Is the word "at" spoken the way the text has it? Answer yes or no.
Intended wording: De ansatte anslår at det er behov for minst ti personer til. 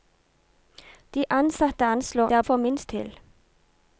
no